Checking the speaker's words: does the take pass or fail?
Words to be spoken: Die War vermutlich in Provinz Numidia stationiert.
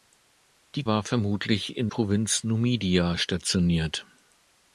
pass